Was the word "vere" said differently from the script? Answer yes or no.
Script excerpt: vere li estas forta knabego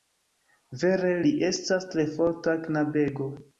no